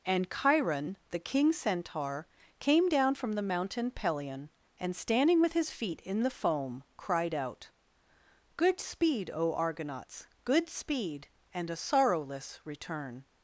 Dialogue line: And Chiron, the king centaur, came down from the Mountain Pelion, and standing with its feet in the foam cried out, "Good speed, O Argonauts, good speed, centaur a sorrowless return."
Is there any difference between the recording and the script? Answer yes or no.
yes